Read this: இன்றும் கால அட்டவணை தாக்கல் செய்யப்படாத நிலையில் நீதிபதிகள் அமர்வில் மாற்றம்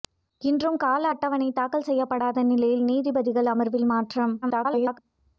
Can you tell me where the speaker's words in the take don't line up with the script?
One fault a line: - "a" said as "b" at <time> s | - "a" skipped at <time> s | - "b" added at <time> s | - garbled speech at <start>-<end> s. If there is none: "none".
- garbled speech at 4.4-5.0 s